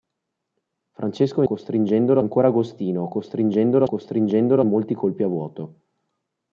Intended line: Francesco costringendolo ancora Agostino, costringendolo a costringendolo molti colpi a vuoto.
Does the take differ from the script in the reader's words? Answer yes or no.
no